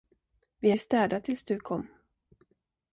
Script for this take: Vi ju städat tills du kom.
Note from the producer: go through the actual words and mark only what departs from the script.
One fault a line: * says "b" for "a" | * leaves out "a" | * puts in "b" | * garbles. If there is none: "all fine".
all fine